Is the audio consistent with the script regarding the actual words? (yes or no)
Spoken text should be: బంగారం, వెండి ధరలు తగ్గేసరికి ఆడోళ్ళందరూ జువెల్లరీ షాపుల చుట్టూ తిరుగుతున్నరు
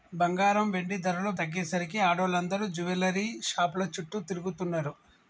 yes